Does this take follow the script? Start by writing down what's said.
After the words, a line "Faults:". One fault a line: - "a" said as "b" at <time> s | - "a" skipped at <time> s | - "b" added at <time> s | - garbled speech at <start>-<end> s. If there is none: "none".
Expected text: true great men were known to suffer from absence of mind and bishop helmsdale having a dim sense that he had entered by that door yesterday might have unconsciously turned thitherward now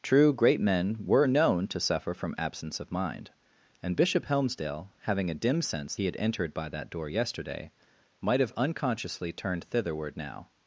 true great men were known to suffer from absence of mind and bishop helmsdale having a dim sense he had entered by that door yesterday might have unconsciously turned thitherward now
Faults:
- "that" skipped at 6.0 s